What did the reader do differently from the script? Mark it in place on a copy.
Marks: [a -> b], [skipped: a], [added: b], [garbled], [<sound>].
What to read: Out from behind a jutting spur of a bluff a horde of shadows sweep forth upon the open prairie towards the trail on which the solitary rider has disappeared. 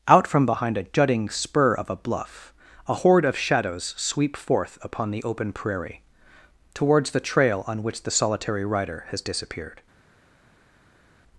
Out from behind a jutting spur of a bluff a horde of shadows sweep forth upon the open prairie towards the trail on which the solitary rider has disappeared.